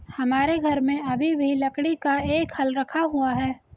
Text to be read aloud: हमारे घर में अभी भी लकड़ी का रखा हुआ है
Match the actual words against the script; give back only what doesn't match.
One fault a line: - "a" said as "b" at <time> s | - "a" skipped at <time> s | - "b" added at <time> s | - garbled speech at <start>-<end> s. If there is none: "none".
- "एक हल" added at 2.3 s